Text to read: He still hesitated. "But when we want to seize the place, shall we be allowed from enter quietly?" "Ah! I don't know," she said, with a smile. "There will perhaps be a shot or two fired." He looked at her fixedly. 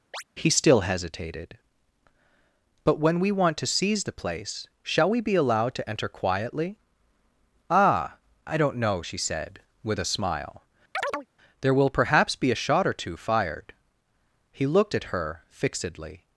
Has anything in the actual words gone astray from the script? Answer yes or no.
yes